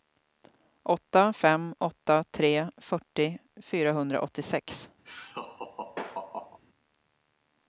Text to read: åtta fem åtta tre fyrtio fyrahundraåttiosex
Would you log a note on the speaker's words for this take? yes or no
no